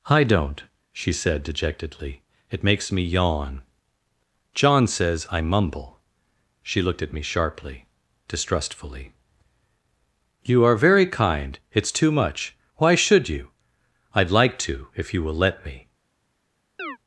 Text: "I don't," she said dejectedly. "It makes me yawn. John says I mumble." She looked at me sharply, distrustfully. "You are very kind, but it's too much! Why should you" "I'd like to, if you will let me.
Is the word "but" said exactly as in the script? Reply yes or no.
no